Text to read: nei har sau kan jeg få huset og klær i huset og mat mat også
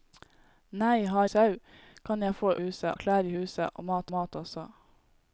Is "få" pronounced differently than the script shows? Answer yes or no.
no